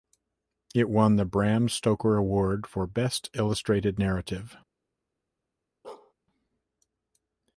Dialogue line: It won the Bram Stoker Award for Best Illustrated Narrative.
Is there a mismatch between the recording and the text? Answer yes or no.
no